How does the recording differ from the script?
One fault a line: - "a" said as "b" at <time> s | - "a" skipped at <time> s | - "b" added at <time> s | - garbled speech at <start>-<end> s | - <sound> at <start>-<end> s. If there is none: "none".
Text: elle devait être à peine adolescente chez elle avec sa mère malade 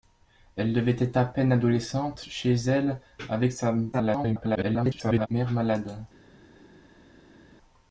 - garbled speech at 3.9-5.3 s